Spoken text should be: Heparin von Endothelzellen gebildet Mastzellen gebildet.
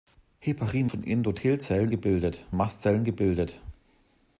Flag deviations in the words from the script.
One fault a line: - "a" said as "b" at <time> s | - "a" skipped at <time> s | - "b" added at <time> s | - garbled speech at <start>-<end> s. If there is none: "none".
none